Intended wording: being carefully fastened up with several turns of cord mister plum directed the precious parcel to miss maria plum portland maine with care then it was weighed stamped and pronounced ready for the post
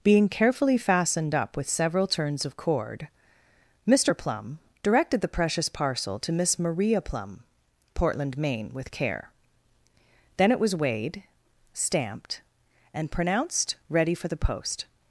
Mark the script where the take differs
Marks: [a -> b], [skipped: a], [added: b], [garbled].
being carefully fastened up with several turns of cord mister plum directed the precious parcel to miss maria plum portland maine with care then it was weighed stamped and pronounced ready for the post